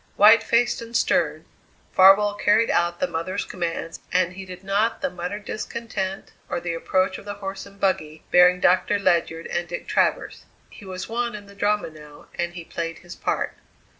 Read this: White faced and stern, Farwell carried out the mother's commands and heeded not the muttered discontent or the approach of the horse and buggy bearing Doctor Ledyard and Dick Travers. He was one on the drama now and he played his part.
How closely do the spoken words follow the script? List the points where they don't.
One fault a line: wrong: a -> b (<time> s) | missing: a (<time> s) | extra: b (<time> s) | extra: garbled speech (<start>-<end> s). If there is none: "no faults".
wrong: on -> in (11.3 s)